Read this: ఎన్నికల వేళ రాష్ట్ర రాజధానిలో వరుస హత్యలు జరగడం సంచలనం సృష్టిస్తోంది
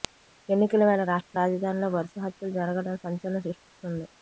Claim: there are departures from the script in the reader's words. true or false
false